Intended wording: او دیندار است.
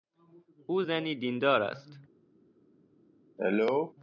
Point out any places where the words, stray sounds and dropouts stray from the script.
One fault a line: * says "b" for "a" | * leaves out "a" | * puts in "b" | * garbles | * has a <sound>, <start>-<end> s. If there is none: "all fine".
* puts in "زنی"
* has a cough, 3.4-3.9 s